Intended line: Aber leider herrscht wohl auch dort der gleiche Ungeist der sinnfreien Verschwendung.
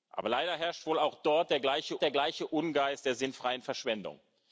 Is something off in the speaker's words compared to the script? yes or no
yes